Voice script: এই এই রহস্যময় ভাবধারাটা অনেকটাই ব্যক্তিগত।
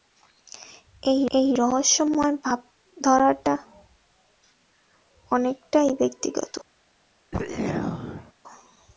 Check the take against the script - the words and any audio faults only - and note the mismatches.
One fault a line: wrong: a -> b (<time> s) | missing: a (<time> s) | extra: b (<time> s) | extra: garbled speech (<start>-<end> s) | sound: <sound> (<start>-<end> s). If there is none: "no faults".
sound: throat clearing (7.3-8.3 s)